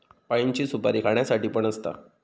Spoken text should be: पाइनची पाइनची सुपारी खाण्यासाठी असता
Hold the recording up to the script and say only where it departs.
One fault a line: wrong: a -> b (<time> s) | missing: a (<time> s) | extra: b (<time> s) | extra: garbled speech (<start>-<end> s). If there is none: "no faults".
missing: पाइनची (0.7 s)
extra: पण (1.5 s)